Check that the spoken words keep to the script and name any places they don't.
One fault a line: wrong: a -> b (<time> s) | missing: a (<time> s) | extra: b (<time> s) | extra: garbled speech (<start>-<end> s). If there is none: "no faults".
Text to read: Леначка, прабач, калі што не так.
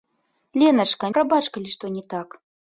no faults